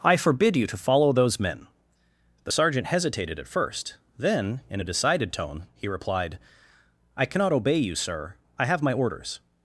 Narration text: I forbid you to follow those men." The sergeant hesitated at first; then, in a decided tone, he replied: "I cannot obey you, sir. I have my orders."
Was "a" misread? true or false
false